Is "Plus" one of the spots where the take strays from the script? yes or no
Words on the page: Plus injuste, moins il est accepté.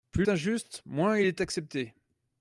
no